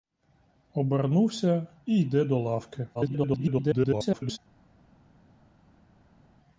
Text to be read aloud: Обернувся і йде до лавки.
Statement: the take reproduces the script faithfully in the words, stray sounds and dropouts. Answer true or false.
false